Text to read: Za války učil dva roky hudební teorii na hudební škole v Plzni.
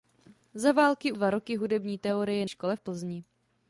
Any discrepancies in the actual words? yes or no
yes